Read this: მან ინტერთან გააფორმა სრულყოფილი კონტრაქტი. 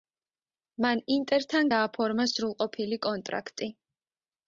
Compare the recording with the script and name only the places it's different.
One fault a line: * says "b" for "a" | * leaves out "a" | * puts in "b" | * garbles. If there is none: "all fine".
all fine